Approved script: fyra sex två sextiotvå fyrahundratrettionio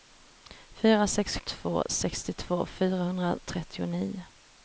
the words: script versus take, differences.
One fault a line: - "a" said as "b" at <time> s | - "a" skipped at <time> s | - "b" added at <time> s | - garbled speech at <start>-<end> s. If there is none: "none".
none